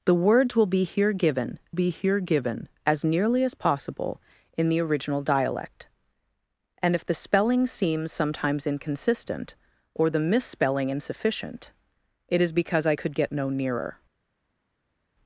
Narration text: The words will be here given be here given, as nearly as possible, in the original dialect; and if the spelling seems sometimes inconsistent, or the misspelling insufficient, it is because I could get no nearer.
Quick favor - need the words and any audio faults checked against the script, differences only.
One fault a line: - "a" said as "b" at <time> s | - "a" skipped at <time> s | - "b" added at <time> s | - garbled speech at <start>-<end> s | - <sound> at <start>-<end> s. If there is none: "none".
none